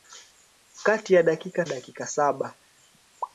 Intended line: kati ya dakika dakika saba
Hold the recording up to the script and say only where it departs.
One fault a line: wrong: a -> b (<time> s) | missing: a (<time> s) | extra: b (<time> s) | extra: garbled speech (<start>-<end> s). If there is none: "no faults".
no faults